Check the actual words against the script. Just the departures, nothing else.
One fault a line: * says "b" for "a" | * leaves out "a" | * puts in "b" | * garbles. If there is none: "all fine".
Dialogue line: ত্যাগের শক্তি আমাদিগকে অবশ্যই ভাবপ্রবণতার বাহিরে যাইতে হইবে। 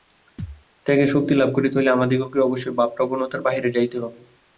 * puts in "লাভ করিতে হইলে"